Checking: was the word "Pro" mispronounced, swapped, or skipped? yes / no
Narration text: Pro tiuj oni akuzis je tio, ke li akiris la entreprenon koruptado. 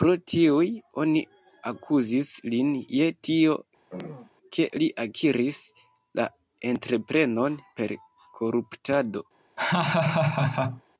no